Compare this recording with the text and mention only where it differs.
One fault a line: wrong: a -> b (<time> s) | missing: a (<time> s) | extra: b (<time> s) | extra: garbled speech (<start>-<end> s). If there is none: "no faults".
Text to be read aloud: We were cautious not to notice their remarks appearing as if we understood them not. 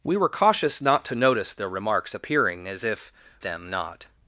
missing: we understood (3.1 s)